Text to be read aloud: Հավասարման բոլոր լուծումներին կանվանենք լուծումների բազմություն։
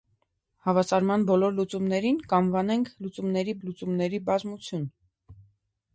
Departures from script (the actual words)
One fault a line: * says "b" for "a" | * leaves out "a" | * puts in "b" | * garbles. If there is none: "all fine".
* puts in "լուծումների"